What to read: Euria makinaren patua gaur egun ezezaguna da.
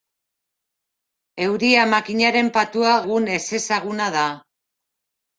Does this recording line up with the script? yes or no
no